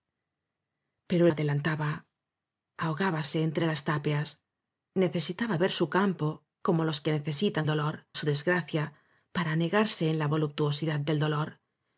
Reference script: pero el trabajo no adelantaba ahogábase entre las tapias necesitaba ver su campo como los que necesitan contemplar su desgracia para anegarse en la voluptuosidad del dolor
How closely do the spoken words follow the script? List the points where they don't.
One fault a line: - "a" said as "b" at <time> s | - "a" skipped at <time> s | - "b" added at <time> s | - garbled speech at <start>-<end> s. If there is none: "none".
- "el trabajo no" skipped at 1.3 s
- "contemplar" said as "dolor" at 7.7 s